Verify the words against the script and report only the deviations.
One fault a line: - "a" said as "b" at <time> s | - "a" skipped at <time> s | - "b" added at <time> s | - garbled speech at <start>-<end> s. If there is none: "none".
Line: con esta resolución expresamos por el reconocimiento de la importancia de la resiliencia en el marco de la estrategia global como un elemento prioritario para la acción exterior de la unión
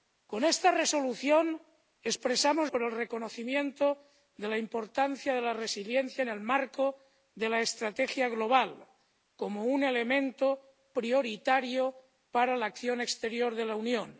none